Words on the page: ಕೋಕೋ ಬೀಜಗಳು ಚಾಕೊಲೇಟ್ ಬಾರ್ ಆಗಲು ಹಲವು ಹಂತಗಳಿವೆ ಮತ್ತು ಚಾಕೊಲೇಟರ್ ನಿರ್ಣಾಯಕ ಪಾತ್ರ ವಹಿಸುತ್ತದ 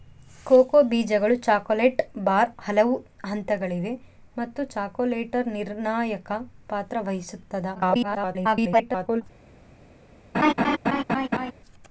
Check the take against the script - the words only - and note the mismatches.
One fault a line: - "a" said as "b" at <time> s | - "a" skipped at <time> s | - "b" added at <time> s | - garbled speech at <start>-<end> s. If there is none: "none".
- "ಆಗಲು" skipped at 2.5 s
- garbled speech at 7.7-9.2 s